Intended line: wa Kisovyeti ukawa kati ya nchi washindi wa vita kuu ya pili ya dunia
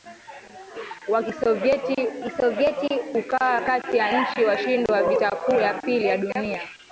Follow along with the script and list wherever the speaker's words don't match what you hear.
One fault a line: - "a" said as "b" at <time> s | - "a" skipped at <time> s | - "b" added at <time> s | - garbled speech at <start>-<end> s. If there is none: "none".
- "Kisovyeti" added at 2.2 s